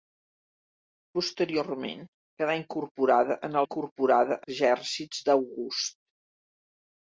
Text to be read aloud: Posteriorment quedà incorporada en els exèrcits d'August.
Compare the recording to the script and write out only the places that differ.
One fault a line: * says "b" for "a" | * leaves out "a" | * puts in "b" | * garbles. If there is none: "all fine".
* says "incorporada" for "els"